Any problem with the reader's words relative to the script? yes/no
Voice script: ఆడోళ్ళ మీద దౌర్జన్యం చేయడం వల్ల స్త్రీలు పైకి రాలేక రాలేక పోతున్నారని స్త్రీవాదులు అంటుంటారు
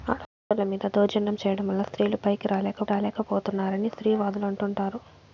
no